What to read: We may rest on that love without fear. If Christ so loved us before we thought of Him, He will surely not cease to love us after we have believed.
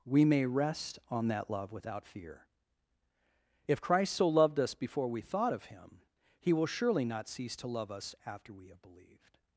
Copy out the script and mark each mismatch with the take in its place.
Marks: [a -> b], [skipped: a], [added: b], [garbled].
We may rest on that love without fear. If Christ so loved us before we thought of Him, He will surely not cease to love us after we have believed.